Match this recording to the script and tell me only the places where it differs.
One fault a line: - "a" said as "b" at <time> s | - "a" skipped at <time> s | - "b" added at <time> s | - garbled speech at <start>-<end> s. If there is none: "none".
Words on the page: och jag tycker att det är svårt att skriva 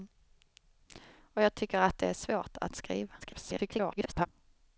- garbled speech at 3.2-4.3 s